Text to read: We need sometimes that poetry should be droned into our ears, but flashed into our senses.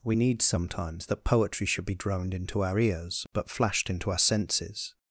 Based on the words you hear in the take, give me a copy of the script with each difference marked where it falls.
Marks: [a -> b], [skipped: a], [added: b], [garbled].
We need sometimes that poetry should be droned into our ears, but flashed into our senses.